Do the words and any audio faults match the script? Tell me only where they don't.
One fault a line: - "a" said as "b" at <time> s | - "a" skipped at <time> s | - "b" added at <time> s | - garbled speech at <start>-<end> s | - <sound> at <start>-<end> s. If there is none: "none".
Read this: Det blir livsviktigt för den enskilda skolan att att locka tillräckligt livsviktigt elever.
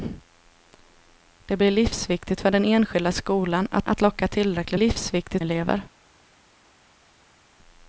none